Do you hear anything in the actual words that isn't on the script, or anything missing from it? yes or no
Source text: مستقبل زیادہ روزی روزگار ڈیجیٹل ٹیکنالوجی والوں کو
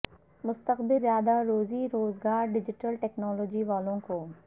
no